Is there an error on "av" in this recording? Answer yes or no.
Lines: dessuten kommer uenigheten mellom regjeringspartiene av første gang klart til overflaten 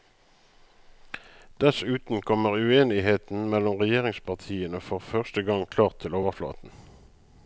yes